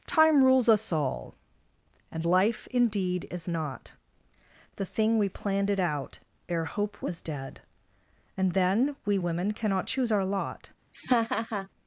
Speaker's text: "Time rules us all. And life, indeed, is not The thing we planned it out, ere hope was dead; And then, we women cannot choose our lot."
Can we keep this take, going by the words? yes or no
yes